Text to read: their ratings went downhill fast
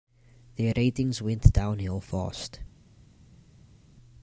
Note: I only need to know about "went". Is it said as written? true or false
true